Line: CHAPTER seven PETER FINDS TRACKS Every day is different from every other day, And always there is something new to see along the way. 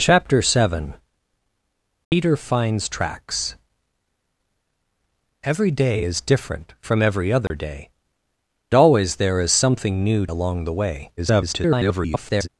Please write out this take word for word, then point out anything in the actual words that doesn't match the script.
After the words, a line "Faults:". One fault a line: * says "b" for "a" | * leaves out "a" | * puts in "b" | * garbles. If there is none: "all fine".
CHAPTER seven PETER FINDS TRACKS Every day is different from every other day, Always there is something new along the way. [garbled]
Faults:
* leaves out "And"
* leaves out "to see"
* garbles